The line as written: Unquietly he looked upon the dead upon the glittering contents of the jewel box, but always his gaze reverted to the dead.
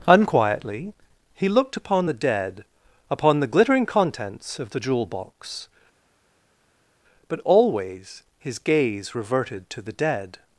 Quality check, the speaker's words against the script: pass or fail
pass